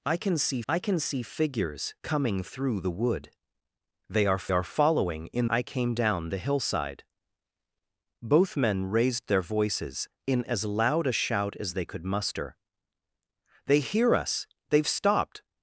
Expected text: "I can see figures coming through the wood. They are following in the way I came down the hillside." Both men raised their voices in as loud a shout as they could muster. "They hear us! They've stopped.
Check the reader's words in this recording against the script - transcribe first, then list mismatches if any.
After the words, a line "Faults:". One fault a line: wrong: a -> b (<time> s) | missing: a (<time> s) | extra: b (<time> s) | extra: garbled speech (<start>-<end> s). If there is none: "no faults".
"I can see I can see figures coming through the wood. They are are following in I came down the hillside." Both men raised their voices in as loud a shout as they could muster. "They hear us! They've stopped.
Faults:
extra: I can see (0.7 s)
extra: are (4.5 s)
missing: the way (5.5 s)